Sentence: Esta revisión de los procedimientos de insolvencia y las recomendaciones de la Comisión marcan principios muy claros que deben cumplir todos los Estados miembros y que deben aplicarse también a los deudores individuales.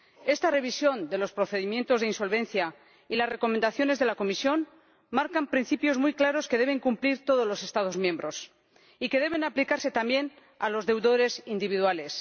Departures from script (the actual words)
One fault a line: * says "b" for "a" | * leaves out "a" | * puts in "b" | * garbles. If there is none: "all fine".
all fine